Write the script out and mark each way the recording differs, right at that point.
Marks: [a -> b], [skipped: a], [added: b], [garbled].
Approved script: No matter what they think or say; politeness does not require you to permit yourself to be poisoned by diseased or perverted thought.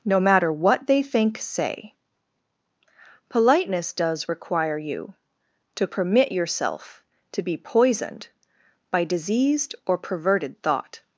No matter what they think [skipped: or] say; politeness does [skipped: not] require you to permit yourself to be poisoned by diseased or perverted thought.